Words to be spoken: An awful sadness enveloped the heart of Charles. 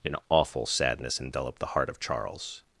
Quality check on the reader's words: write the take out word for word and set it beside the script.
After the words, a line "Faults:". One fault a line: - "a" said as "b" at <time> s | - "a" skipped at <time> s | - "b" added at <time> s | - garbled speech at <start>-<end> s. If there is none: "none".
An awful sadness enveloped the heart of Charles.
Faults:
none